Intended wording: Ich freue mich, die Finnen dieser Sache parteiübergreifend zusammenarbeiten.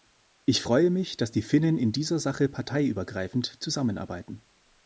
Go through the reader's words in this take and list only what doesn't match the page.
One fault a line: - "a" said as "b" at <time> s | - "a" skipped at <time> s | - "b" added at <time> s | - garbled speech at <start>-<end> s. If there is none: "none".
- "dass" added at 1.2 s
- "in" added at 1.8 s